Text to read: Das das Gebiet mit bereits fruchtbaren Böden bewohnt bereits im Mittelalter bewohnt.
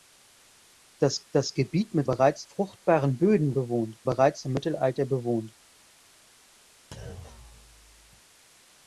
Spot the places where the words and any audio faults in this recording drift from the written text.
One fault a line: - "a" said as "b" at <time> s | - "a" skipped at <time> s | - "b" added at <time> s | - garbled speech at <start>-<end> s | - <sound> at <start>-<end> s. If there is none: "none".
- thud at 6.9-8.2 s